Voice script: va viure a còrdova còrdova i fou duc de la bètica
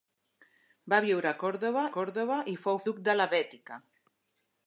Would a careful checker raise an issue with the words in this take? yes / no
no